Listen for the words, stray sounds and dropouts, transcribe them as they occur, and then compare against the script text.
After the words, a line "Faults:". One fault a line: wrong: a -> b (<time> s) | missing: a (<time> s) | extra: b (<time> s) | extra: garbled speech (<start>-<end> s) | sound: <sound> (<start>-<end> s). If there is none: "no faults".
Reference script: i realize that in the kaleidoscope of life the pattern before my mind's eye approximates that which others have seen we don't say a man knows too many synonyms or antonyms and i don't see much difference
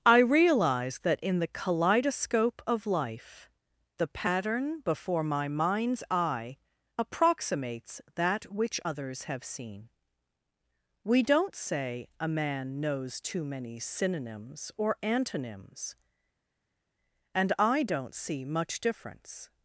i realize that in the kaleidoscope of life the pattern before my mind's eye approximates that which others have seen we don't say a man knows too many synonyms or antonyms and i don't see much difference
Faults:
no faults